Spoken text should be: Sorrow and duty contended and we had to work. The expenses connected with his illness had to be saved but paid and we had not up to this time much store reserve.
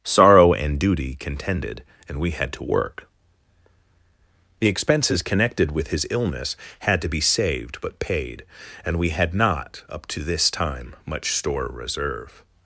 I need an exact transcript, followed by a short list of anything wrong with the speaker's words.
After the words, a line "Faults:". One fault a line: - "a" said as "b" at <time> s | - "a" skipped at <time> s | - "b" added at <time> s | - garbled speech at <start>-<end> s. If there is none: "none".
Sorrow and duty contended and we had to work. The expenses connected with his illness had to be saved but paid and we had not up to this time much store reserve.
Faults:
none